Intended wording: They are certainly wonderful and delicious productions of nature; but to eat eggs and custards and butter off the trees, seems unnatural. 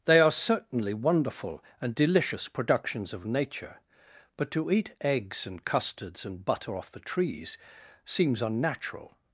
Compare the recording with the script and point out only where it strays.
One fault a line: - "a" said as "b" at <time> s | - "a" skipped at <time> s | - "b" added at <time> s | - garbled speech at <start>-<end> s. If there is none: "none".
none